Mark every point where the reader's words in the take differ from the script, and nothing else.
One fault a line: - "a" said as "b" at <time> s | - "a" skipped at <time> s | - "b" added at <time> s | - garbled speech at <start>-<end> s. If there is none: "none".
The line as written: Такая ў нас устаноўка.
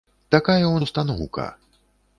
- "нас" skipped at 0.8 s